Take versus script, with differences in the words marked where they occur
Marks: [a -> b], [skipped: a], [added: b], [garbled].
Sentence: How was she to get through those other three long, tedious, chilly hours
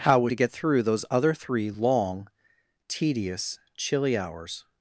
How was [skipped: she] to get through those other three long, tedious, chilly hours